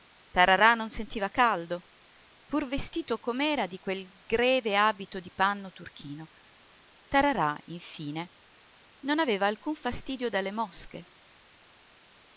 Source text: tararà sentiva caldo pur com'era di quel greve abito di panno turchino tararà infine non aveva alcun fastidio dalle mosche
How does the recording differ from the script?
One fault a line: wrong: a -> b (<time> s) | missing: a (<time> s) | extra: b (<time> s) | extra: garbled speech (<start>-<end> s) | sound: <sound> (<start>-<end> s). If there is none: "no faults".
extra: non (0.7 s)
extra: vestito (2.7 s)